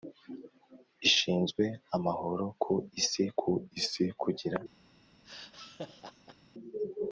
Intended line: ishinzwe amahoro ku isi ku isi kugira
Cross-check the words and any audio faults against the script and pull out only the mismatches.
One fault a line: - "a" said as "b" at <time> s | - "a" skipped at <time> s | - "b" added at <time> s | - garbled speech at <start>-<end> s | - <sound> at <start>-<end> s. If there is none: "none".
- laugh at 5.2-6.4 s